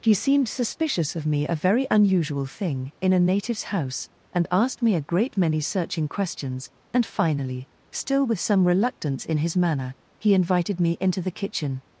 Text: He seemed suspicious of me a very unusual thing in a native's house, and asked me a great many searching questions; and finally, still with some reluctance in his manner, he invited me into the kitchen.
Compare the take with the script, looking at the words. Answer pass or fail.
pass